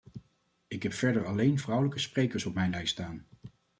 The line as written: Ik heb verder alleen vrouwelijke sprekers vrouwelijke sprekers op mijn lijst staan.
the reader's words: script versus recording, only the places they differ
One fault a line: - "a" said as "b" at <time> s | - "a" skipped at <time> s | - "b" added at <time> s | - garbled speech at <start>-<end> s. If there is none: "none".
- "vrouwelijke sprekers" skipped at 2.5 s